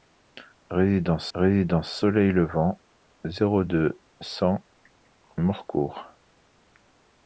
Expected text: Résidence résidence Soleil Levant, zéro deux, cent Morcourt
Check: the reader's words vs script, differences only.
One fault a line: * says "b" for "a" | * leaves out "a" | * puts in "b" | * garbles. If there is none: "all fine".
all fine